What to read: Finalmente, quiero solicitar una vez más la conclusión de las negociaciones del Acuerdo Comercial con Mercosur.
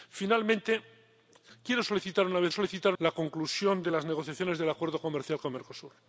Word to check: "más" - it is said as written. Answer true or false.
false